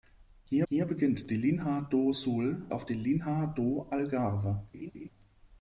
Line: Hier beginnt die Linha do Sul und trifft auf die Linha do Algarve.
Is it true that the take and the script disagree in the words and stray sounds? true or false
true